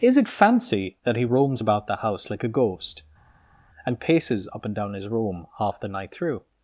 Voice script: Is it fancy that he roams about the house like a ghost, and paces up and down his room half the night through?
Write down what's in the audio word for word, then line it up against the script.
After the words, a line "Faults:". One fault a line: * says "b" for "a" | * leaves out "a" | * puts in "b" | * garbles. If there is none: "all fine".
Is it fancy that he roams about the house like a ghost, and paces up and down his room half the night through?
Faults:
all fine